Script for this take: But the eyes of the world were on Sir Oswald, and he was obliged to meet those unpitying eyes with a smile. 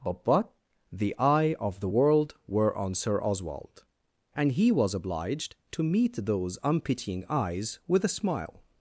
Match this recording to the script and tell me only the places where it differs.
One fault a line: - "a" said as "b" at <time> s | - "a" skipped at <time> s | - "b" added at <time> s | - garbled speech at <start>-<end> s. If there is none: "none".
- "eyes" said as "eye" at 1.2 s